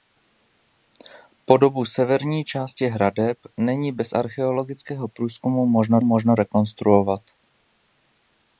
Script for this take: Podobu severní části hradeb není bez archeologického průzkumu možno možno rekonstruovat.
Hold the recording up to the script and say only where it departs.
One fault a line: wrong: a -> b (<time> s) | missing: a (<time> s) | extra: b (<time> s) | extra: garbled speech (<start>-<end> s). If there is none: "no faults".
no faults